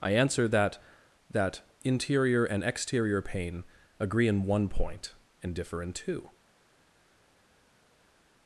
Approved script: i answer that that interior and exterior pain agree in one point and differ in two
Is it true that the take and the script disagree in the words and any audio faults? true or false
false